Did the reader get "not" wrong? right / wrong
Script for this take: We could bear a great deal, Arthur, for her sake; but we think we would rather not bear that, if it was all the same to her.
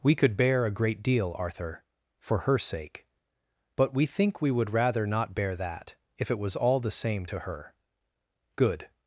right